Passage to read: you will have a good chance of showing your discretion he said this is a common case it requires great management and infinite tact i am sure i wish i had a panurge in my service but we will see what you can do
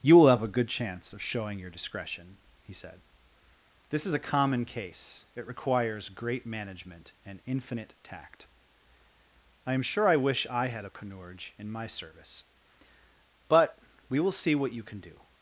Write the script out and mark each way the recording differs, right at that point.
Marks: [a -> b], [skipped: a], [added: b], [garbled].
you will have a good chance of showing your discretion he said this is a common case it requires great management and infinite tact i am sure i wish i had a panurge in my service but we will see what you can do